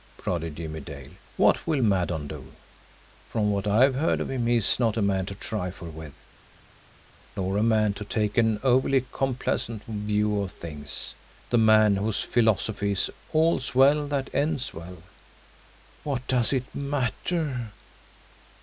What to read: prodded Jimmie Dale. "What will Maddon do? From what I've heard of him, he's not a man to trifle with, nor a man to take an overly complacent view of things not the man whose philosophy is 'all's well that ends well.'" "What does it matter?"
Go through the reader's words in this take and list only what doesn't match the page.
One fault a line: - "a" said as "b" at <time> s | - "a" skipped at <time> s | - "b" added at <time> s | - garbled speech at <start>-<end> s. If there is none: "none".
- "not" skipped at 11.1 s